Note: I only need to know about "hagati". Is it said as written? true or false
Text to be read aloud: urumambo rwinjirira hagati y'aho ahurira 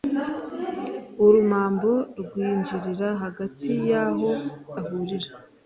true